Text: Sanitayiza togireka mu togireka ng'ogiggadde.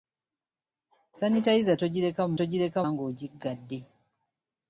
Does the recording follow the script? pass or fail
pass